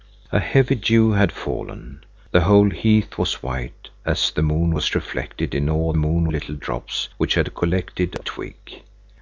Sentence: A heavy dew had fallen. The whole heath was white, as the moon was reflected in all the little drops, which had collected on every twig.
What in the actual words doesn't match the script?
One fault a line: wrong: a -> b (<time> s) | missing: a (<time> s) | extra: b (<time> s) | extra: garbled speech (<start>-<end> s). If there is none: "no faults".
wrong: the -> moon (5.9 s)
missing: on every (8.1 s)